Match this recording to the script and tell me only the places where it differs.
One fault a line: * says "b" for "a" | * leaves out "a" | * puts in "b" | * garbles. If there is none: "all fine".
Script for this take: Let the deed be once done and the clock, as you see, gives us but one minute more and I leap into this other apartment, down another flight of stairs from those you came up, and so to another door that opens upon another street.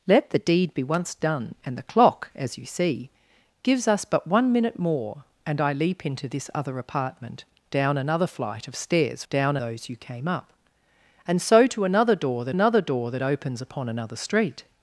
* says "down" for "from"
* puts in "another door that"